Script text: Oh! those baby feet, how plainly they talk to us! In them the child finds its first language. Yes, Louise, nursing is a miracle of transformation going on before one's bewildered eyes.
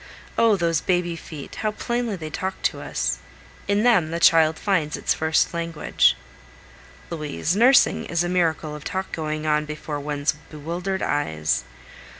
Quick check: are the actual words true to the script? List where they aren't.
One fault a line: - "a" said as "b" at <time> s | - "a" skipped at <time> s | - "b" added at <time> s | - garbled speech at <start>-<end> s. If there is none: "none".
- "Yes" skipped at 6.2 s
- "transformation" said as "talk" at 8.8 s